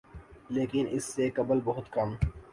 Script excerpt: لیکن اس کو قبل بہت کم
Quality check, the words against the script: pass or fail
fail